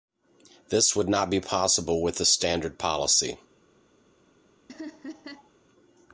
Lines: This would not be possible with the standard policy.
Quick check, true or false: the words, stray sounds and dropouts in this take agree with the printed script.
false